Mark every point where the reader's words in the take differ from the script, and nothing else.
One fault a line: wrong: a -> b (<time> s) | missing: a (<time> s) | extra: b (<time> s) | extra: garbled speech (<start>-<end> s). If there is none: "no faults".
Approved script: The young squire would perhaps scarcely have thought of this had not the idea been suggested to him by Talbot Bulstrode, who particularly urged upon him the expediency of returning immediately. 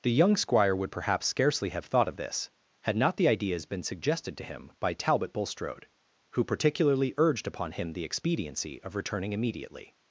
wrong: idea -> ideas (3.3 s)